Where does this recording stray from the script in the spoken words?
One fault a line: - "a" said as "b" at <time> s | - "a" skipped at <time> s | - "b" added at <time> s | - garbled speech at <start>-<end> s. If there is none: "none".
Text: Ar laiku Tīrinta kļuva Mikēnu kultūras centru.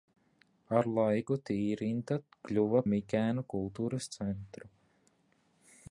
none